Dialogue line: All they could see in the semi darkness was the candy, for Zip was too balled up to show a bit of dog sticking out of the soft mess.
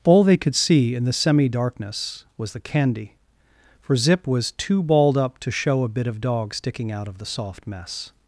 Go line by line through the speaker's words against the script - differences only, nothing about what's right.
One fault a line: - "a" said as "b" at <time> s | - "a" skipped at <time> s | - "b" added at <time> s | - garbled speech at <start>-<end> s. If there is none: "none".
none